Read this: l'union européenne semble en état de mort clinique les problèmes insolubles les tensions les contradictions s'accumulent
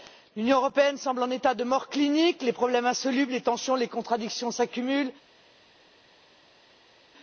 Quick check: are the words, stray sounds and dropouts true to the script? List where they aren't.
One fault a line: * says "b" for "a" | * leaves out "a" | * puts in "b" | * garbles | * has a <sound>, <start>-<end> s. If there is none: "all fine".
all fine